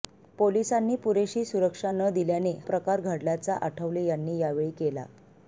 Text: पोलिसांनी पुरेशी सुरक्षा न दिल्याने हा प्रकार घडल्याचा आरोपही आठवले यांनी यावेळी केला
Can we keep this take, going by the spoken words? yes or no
no